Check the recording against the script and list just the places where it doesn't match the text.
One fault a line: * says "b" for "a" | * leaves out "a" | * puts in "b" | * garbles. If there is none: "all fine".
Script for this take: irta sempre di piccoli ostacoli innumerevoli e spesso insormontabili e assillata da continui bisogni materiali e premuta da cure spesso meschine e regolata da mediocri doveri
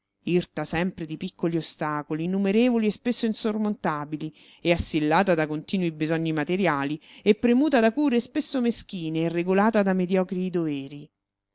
all fine